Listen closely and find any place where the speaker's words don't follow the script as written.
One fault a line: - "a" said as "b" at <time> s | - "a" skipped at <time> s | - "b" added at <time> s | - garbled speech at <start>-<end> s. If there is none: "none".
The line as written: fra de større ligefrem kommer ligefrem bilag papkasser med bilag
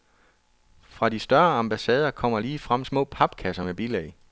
- "ligefrem" said as "ambassader" at 1.6 s
- "bilag" said as "små" at 2.8 s